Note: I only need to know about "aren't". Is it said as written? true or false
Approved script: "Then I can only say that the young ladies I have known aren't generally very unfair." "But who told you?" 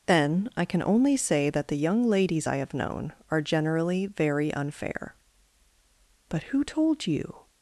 false